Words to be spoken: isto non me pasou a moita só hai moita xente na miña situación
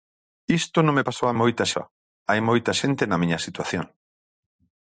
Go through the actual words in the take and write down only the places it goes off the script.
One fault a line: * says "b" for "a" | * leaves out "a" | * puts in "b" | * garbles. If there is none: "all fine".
all fine